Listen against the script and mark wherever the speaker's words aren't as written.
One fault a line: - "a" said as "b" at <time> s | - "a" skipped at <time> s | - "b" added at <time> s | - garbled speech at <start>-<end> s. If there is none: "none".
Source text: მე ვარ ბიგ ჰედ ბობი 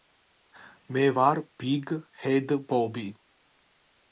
none